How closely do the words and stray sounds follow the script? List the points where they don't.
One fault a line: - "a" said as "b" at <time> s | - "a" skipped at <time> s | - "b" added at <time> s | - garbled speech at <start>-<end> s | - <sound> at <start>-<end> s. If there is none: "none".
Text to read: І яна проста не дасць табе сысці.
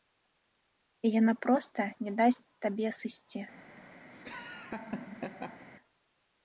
- laugh at 4.1-5.7 s